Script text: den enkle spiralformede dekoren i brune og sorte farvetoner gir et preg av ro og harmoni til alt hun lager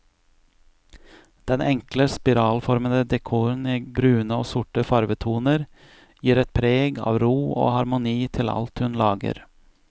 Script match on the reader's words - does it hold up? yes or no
yes